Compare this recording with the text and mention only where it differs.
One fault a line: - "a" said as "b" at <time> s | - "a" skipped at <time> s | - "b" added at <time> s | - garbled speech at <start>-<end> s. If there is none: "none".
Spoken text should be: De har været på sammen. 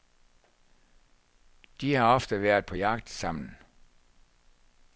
- "ofte" added at 2.1 s
- "jagt" added at 2.7 s